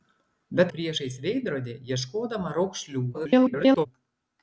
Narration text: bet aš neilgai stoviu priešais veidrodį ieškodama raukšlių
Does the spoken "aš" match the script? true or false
false